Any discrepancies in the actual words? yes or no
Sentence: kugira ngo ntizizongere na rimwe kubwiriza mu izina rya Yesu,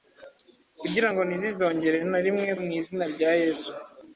yes